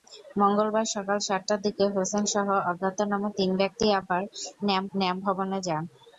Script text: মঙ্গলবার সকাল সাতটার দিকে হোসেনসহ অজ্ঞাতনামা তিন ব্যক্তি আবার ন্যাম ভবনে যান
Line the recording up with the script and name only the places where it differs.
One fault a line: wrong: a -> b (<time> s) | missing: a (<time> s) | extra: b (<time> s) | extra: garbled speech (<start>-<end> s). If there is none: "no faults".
extra: ন্যাম (5.0 s)